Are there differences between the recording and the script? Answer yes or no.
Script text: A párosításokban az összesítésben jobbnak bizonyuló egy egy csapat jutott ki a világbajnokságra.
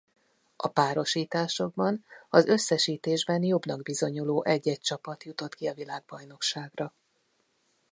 no